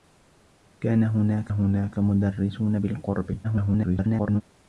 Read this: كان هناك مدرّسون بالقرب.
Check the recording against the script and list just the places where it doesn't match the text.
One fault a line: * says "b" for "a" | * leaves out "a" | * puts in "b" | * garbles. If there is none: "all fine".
* puts in "هناك"
* garbles